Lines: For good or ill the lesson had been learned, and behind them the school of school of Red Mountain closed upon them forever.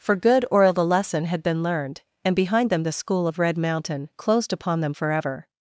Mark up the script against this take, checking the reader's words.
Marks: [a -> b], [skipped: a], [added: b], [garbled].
For good or ill the lesson had been learned, and behind them the school of [skipped: school of] Red Mountain closed upon them forever.